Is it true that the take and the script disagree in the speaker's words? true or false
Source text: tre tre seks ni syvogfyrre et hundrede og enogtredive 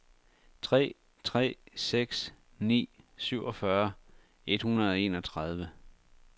false